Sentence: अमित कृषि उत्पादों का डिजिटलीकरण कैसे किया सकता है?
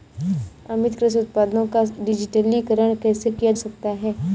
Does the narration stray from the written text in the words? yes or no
no